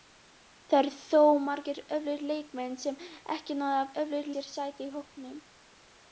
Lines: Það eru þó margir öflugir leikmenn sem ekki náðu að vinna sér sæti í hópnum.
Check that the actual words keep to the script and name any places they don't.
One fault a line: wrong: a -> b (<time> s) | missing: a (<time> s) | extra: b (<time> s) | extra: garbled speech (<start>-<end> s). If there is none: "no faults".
wrong: vinna -> öflugir (4.0 s)